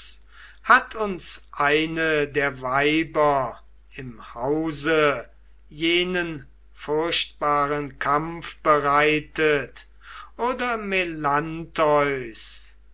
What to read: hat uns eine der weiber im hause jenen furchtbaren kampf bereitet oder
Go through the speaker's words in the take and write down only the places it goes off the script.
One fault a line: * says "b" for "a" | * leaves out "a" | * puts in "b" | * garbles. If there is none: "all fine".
all fine